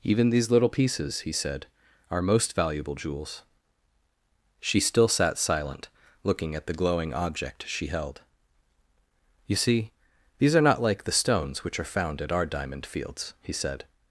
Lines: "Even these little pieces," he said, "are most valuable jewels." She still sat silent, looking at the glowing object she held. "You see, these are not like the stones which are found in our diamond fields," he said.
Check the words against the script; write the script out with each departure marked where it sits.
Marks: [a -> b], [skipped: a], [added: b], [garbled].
"Even these little pieces," he said, "are most valuable jewels." She still sat silent, looking at the glowing object she held. "You see, these are not like the stones which are found [in -> at] our diamond fields," he said.